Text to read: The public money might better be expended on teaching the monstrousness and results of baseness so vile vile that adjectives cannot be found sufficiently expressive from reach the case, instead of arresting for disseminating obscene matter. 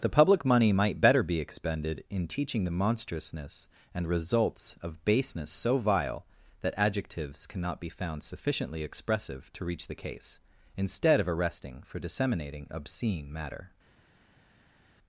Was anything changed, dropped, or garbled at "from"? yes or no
yes